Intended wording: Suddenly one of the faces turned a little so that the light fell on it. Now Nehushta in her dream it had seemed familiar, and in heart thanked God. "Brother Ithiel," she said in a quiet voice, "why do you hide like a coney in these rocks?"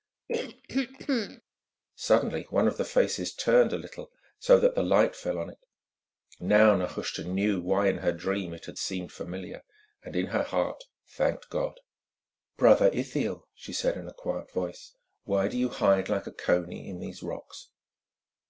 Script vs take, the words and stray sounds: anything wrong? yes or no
yes